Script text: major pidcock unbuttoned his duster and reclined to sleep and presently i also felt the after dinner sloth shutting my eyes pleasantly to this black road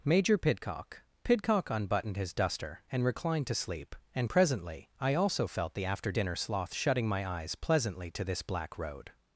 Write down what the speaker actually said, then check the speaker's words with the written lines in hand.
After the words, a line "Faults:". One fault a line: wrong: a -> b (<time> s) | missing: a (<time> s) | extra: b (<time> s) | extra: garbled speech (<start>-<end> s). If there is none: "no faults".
major pidcock pidcock unbuttoned his duster and reclined to sleep and presently i also felt the after dinner sloth shutting my eyes pleasantly to this black road
Faults:
extra: pidcock (1.2 s)